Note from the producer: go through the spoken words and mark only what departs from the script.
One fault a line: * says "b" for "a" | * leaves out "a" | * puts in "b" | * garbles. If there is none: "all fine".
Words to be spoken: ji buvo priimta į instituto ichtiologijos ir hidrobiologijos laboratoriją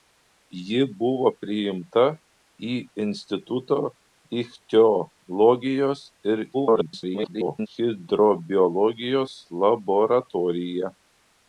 * garbles